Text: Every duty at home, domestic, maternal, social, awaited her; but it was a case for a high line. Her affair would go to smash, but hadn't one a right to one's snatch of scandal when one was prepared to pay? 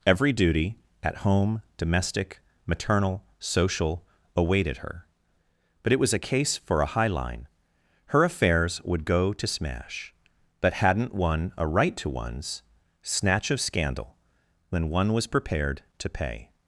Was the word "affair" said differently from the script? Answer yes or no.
yes